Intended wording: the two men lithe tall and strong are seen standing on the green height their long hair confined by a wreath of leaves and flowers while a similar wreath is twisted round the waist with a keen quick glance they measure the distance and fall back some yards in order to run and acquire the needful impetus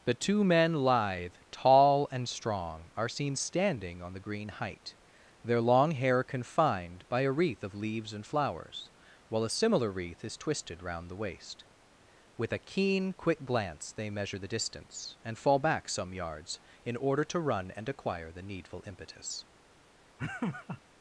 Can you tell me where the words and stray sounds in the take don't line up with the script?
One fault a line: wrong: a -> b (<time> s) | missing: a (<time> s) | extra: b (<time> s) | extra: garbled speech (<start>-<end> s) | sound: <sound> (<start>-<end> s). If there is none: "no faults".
sound: laugh (20.2-20.8 s)